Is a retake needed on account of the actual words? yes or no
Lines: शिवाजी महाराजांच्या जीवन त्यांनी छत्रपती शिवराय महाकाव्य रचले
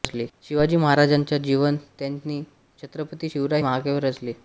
no